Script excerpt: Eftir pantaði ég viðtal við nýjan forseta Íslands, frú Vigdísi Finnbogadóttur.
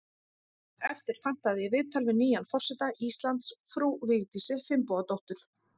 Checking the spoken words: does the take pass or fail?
pass